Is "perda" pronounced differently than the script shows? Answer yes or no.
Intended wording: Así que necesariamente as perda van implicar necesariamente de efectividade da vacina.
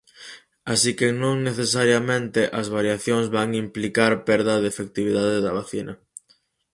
yes